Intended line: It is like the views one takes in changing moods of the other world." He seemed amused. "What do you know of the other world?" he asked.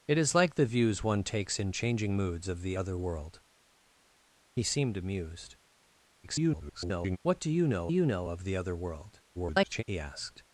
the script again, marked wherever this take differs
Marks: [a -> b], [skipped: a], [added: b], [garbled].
It is like the views one takes in changing moods of the other world." He seemed amused. [garbled] "What do you know [added: you know] of the other world?" [garbled] he asked.